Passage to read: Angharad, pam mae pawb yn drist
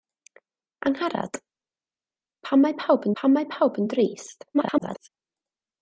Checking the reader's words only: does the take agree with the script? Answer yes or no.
no